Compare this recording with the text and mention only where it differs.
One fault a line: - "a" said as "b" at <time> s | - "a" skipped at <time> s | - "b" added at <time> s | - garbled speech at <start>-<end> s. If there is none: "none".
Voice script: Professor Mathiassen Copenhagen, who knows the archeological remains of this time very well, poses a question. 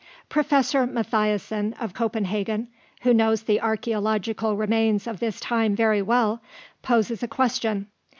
- "of" added at 1.8 s